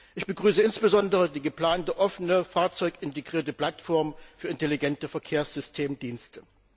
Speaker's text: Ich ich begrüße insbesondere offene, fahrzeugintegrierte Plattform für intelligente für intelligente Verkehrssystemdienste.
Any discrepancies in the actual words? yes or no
yes